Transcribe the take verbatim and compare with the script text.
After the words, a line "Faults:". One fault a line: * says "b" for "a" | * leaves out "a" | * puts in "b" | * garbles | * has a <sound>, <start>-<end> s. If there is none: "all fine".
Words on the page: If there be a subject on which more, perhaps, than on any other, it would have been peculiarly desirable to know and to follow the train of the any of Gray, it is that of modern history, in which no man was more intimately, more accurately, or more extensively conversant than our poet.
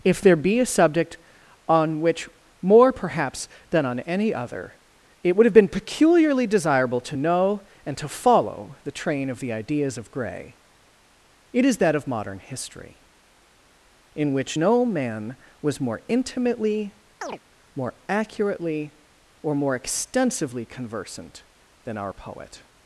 If there be a subject on which more, perhaps, than on any other, it would have been peculiarly desirable to know and to follow the train of the ideas of Gray, it is that of modern history, in which no man was more intimately, more accurately, or more extensively conversant than our poet.
Faults:
* says "ideas" for "any"
* has a chirp, 17.2-17.4 s